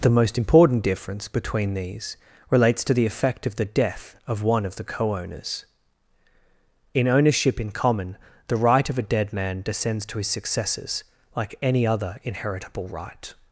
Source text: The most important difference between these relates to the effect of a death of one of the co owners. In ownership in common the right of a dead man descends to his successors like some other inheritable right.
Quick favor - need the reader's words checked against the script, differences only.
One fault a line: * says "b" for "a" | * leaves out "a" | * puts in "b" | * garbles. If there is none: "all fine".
* says "the" for "a"
* says "any" for "some"